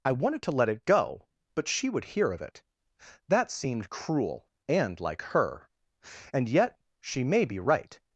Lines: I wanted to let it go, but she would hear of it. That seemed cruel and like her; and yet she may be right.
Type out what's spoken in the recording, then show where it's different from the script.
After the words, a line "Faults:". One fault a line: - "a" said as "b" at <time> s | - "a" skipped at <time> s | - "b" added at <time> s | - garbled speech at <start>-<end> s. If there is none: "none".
I wanted to let it go, but she would hear of it. That seemed cruel and like her; and yet she may be right.
Faults:
none